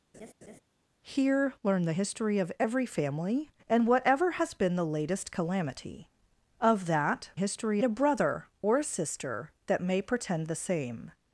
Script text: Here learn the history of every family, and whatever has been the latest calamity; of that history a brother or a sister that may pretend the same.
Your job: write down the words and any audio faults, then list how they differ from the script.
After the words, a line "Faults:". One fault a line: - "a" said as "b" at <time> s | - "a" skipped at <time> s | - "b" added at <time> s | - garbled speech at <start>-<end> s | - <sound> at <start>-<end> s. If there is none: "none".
Here learn the history of every family, and whatever has been the latest calamity; of that history a brother or a sister that may pretend the same.
Faults:
- laugh at 0.1-0.6 s